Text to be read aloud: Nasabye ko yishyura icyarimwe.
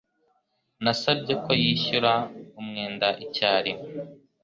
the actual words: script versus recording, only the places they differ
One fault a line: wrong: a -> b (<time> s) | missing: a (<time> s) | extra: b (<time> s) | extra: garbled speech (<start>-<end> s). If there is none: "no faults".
extra: umwenda (2.6 s)